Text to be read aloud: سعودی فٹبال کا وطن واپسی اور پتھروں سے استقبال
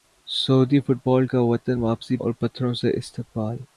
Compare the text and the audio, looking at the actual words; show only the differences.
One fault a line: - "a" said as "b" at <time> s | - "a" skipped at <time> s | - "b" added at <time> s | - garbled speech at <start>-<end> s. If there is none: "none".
none